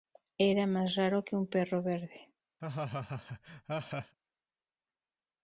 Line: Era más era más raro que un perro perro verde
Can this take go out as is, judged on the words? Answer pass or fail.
fail